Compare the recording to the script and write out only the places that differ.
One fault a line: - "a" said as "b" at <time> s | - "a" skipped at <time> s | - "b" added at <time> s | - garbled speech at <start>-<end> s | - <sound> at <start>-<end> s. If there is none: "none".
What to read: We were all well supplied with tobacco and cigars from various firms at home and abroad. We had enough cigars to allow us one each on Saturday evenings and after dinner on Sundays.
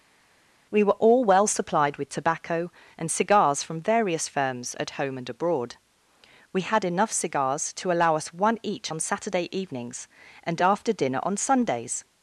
none